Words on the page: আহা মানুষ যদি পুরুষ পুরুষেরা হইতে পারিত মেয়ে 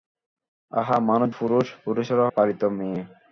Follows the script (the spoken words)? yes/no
no